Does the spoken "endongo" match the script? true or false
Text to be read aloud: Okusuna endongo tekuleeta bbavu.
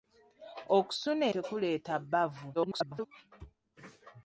false